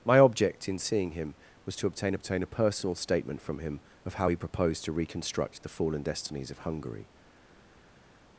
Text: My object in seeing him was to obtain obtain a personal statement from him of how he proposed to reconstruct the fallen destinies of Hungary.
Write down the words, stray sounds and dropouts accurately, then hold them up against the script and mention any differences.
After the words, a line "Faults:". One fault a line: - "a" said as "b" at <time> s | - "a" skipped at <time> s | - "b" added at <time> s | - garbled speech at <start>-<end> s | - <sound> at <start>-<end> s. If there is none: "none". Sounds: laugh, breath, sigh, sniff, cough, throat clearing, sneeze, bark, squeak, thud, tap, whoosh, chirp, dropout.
My object in seeing him was to obtain obtain a personal statement from him of how he proposed to reconstruct the fallen destinies of Hungary.
Faults:
none